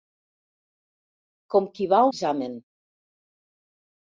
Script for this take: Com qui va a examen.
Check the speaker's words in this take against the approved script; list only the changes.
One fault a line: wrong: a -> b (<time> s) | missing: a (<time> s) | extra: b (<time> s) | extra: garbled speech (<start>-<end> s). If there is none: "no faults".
no faults